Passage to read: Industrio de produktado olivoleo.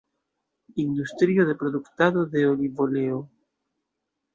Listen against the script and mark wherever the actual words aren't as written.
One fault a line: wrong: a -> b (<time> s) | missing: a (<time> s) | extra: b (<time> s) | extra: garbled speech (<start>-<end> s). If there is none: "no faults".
extra: de (2.2 s)